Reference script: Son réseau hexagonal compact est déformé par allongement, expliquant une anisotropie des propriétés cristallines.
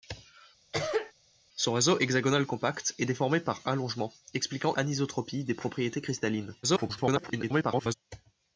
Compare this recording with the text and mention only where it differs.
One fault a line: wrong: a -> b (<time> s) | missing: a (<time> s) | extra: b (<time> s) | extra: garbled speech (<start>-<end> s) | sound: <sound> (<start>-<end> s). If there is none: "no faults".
sound: cough (0.7-1.1 s)
missing: une (4.8 s)
extra: garbled speech (6.6-7.9 s)